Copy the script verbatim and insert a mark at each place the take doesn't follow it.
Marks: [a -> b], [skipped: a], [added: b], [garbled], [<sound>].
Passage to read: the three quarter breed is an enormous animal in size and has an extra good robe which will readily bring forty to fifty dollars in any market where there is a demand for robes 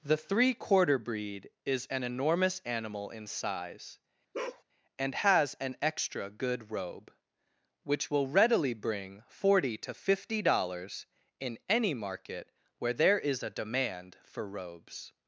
the three quarter breed is an enormous animal in size [bark] and has an extra good robe which will readily bring forty to fifty dollars in any market where there is a demand for robes